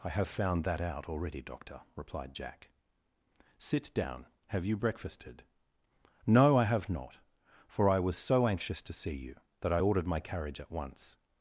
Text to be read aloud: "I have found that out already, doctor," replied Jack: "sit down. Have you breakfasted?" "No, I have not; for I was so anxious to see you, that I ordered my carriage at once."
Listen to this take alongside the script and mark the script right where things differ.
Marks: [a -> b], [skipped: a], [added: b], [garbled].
"I have found that out already, doctor," replied Jack: "sit down. Have you breakfasted?" "No, I have not; for I was so anxious to see you, that I ordered my carriage at once."